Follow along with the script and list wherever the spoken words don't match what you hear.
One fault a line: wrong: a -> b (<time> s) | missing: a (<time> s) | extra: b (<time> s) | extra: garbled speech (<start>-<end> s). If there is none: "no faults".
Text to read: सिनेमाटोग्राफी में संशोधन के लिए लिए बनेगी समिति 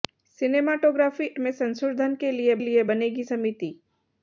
no faults